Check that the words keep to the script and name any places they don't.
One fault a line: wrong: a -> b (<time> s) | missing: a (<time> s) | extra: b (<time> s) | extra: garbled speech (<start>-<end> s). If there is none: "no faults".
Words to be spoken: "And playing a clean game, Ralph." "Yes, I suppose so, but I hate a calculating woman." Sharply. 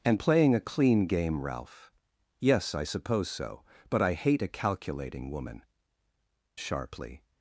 no faults